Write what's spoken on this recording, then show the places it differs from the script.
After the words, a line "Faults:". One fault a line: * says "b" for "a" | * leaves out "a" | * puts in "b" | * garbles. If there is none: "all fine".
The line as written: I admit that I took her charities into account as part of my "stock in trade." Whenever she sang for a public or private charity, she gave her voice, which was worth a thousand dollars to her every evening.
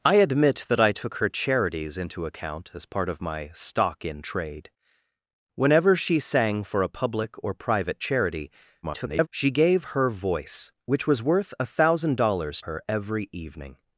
I admit that I took her charities into account as part of my "stock in trade." Whenever she sang for a public or private charity, [garbled] she gave her voice, which was worth a thousand dollars her every evening.
Faults:
* garbles
* leaves out "to"